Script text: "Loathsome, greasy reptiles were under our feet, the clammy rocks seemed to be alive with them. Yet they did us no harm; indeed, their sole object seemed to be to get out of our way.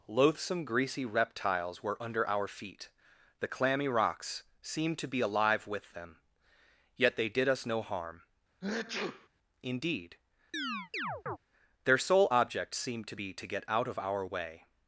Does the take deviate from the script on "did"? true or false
false